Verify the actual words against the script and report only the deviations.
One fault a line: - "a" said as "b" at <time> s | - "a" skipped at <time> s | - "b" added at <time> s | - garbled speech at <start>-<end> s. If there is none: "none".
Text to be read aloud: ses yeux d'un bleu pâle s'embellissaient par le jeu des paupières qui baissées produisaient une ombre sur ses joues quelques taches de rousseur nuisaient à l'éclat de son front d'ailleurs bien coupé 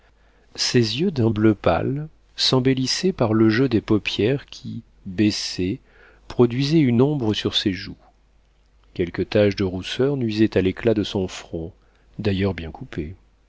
none